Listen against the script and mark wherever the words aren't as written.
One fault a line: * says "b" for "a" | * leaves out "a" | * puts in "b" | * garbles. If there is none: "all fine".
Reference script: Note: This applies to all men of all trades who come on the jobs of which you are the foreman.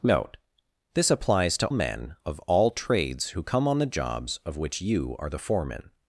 * leaves out "all"